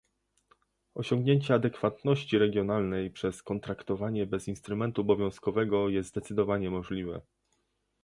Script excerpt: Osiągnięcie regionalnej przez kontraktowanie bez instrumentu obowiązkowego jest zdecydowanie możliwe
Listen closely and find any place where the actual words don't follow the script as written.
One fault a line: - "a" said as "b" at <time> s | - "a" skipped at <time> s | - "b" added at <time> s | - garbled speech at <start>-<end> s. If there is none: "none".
- "adekwatności" added at 1.5 s